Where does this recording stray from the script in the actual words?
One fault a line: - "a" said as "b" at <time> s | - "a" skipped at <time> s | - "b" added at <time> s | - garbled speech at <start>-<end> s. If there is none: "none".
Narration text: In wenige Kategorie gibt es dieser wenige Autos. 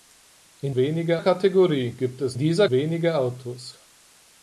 none